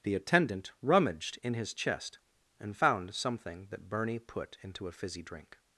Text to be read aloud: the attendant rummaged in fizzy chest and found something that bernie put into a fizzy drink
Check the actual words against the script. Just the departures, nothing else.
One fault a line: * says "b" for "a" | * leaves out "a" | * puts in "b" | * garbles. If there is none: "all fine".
* says "his" for "fizzy"